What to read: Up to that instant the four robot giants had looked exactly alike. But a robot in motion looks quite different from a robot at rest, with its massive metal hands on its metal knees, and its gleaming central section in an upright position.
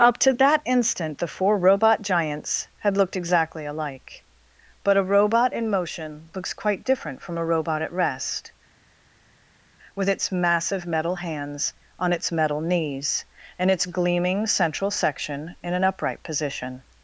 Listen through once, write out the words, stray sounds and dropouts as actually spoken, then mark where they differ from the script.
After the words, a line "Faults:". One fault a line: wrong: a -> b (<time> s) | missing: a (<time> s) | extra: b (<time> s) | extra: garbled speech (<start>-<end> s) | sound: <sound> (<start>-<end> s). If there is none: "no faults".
Up to that instant the four robot giants had looked exactly alike. But a robot in motion looks quite different from a robot at rest, with its massive metal hands on its metal knees, and its gleaming central section in an upright position.
Faults:
no faults